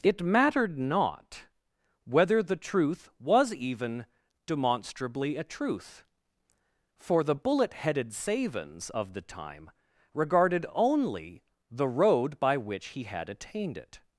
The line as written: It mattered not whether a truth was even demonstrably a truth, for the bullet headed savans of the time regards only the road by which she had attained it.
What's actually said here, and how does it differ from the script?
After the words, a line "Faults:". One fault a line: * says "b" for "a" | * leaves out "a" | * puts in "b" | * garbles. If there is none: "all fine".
It mattered not whether the truth was even demonstrably a truth, for the bullet headed savans of the time regarded only the road by which he had attained it.
Faults:
* says "the" for "a"
* says "regarded" for "regards"
* says "he" for "she"